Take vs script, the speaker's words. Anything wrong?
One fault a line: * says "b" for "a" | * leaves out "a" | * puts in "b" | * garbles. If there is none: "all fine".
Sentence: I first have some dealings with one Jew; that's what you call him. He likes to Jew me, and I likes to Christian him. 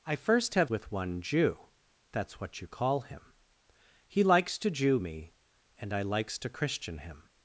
* leaves out "some dealings"